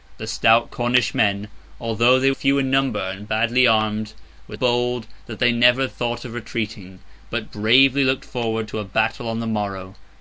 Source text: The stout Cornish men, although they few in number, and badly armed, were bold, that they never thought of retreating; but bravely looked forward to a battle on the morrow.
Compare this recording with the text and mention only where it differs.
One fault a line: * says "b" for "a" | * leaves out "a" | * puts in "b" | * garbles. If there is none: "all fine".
all fine